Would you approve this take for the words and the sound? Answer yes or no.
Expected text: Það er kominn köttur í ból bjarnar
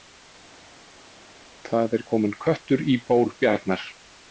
yes